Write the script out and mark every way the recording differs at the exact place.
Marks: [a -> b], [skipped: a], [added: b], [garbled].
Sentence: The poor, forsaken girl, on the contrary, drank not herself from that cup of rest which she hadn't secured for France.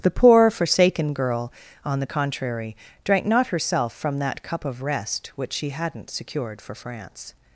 The poor, forsaken girl, on the contrary, drank not herself from that cup of rest which she hadn't secured for France.